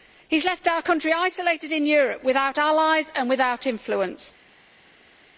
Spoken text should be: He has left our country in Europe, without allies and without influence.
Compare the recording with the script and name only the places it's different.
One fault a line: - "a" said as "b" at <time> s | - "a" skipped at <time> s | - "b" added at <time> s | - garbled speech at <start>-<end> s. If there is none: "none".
- "isolated" added at 1.1 s